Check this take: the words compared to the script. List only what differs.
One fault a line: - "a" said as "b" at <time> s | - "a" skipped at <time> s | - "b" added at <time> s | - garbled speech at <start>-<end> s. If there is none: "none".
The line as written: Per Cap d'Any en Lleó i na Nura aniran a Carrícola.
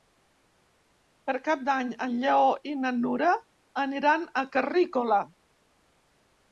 none